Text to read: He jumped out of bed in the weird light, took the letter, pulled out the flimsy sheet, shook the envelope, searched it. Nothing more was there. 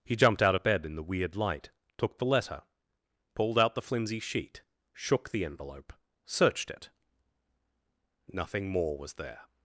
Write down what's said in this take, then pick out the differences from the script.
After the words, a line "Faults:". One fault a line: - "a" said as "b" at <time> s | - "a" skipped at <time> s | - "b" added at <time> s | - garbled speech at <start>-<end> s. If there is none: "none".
He jumped out of bed in the weird light, took the letter, pulled out the flimsy sheet, shook the envelope, searched it. Nothing more was there.
Faults:
none